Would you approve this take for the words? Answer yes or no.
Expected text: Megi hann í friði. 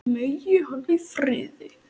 yes